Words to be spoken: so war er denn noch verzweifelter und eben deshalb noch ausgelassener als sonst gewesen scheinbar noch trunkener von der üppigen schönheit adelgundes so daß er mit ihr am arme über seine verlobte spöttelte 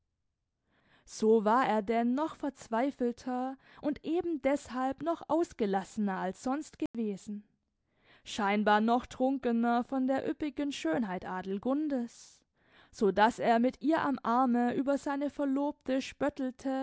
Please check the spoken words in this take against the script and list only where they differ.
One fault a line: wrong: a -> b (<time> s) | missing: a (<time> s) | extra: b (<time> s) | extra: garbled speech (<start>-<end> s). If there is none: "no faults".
no faults